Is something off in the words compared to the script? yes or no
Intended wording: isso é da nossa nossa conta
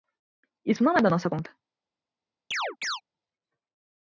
yes